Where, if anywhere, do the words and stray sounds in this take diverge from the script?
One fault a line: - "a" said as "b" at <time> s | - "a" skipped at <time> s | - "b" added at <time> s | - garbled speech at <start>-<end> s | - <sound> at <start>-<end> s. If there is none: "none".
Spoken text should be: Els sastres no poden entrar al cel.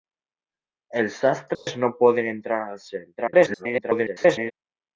- dropout at 1.5-1.7 s
- garbled speech at 3.2-4.5 s